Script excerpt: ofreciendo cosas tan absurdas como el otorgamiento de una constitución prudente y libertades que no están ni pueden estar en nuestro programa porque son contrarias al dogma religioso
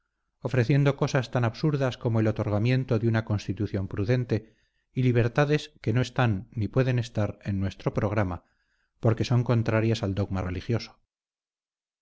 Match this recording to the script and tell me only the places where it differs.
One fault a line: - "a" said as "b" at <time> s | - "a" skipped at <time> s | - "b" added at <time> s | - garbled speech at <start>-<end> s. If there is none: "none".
none